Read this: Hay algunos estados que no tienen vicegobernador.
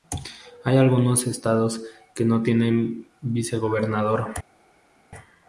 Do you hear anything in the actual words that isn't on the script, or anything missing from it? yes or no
no